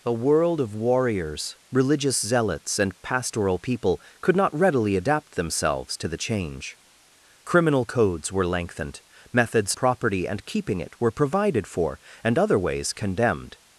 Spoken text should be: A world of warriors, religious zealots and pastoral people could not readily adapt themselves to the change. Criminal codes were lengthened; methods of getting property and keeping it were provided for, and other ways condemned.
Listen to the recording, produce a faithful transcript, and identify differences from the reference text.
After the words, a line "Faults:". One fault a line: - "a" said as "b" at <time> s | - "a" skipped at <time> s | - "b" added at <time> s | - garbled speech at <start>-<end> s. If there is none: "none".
A world of warriors, religious zealots and pastoral people could not readily adapt themselves to the change. Criminal codes were lengthened; methods property and keeping it were provided for, and other ways condemned.
Faults:
- "of getting" skipped at 9.8 s